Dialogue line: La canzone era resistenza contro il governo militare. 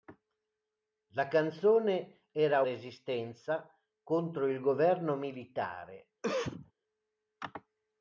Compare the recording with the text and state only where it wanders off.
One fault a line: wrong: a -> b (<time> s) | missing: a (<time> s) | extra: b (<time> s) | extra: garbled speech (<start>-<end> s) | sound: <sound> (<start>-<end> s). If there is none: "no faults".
sound: cough (6.2-6.7 s)